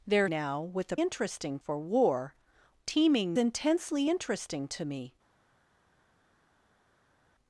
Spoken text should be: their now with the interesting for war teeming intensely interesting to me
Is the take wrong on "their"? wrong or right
right